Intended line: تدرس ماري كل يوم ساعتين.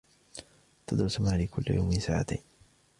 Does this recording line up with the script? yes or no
yes